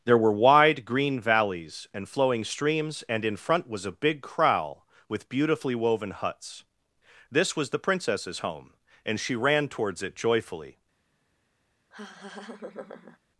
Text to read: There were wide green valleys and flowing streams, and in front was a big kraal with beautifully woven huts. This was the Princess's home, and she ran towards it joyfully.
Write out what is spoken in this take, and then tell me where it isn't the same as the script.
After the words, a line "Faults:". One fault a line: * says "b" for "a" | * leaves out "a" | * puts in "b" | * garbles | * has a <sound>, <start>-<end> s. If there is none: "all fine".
There were wide green valleys and flowing streams, and in front was a big kraal with beautifully woven huts. This was the Princess's home, and she ran towards it joyfully.
Faults:
* has a laugh, 11.9-13.2 s